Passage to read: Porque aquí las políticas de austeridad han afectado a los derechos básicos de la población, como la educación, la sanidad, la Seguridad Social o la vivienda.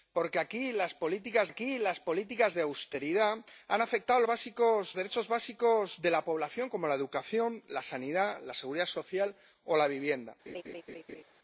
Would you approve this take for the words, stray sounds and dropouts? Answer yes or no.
no